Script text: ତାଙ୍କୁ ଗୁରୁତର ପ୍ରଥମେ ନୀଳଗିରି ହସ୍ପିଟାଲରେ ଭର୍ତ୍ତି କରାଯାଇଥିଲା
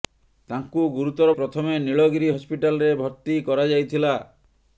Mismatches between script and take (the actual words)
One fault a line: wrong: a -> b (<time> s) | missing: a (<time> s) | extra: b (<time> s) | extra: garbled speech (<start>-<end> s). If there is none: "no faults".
no faults